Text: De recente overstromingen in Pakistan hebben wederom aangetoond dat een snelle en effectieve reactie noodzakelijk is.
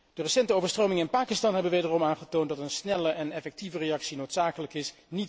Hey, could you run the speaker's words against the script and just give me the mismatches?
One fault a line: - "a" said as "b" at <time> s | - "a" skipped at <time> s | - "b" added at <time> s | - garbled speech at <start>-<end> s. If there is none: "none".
none